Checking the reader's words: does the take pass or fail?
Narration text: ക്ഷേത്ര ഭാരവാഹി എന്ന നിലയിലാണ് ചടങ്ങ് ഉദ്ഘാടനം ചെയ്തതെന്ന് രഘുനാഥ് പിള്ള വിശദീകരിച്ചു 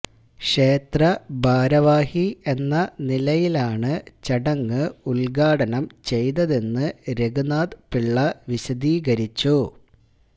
pass